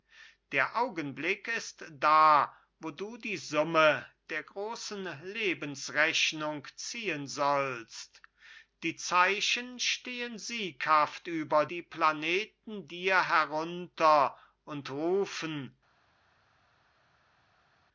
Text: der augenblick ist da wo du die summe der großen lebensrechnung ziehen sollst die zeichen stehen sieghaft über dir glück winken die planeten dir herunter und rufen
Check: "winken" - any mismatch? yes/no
yes